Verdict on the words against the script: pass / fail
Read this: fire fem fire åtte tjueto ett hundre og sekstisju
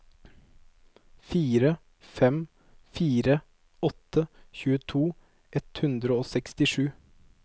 pass